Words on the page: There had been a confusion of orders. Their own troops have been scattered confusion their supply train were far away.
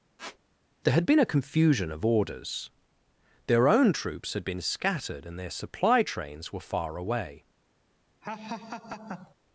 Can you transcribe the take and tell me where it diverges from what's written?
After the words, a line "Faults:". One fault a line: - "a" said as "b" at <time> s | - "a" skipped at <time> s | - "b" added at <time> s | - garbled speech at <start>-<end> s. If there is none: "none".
There had been a confusion of orders. Their own troops had been scattered and their supply trains were far away.
Faults:
- "have" said as "had" at 4.3 s
- "confusion" said as "and" at 5.3 s
- "train" said as "trains" at 6.0 s